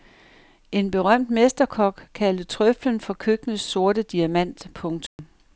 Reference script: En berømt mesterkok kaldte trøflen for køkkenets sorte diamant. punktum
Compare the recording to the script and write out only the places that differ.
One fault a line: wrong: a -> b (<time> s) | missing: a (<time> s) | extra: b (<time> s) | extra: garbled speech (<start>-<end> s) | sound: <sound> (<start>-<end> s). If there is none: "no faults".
sound: dropout (5.1-5.2 s)